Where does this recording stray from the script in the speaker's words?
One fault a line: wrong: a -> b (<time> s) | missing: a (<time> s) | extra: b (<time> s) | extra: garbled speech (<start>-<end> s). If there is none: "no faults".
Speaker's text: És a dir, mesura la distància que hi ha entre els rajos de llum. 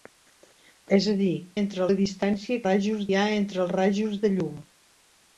wrong: mesura -> entre (1.6 s)
wrong: que -> rajos (2.7 s)